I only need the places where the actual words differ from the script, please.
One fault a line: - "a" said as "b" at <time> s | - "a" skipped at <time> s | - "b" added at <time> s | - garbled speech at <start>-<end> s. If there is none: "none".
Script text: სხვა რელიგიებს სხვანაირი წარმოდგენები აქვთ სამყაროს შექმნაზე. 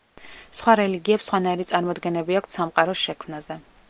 none